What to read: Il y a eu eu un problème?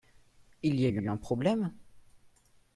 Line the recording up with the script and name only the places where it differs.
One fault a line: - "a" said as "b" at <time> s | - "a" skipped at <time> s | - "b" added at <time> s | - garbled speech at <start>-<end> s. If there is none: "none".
none